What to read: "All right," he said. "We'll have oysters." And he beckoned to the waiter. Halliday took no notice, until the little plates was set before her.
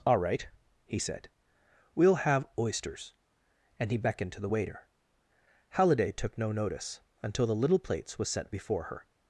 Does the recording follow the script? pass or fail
pass